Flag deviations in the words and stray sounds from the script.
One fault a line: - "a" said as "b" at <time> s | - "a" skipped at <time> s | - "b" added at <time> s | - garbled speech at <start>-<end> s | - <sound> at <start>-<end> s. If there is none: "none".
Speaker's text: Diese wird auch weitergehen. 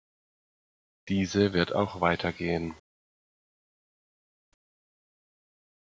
none